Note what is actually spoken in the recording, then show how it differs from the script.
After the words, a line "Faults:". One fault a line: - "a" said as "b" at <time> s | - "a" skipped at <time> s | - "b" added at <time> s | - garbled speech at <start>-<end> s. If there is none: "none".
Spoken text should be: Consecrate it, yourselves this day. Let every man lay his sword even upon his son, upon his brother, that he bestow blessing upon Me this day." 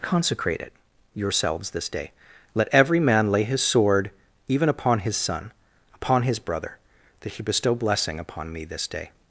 Consecrate it, yourselves this day. Let every man lay his sword even upon his son, upon his brother, that he bestow blessing upon Me this day."
Faults:
none